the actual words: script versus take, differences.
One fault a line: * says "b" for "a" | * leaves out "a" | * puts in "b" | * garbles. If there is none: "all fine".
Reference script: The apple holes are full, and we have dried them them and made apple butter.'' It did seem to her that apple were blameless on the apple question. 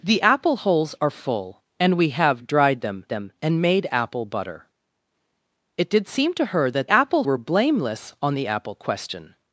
all fine